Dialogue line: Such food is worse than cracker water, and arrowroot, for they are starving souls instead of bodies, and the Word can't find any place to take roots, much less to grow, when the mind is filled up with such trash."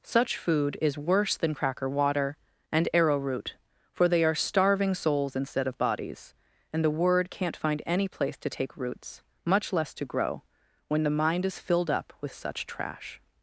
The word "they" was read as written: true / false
true